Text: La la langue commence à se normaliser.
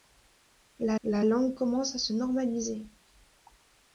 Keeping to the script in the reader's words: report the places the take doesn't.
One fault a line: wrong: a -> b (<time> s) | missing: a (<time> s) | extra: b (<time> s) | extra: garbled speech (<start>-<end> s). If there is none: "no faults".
no faults